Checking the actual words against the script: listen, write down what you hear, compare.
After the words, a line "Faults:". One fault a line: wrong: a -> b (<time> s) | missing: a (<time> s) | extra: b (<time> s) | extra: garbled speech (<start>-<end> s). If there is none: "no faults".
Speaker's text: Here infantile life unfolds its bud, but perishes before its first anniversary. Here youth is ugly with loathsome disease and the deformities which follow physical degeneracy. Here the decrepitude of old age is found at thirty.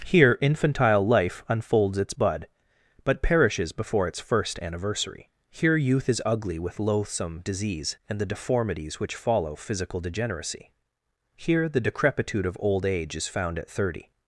Here infantile life unfolds its bud, but perishes before its first anniversary. Here youth is ugly with loathsome disease and the deformities which follow physical degeneracy. Here the decrepitude of old age is found at thirty.
Faults:
no faults